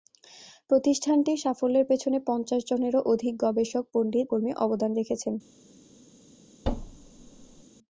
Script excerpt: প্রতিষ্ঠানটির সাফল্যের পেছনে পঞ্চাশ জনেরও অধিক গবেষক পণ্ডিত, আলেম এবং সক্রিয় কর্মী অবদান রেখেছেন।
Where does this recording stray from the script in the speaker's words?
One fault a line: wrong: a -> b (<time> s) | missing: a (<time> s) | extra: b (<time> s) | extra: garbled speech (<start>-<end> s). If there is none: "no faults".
missing: আলেম এবং সক্রিয় (4.3 s)